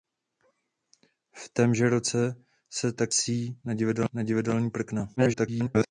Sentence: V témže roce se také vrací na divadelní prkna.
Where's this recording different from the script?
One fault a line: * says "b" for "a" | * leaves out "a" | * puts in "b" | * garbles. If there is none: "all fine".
* garbles